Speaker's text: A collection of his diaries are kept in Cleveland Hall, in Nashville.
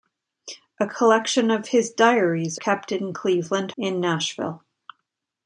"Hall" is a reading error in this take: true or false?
true